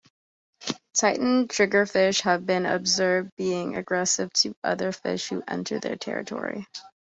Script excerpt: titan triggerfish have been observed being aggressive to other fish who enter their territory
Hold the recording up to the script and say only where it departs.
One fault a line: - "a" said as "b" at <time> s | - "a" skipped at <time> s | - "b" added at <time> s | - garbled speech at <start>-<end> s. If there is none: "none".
none